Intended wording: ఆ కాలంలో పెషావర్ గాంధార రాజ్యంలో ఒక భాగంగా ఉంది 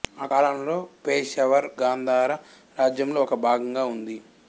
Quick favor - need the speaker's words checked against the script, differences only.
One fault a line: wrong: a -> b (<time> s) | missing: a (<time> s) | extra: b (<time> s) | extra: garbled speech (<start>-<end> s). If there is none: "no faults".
no faults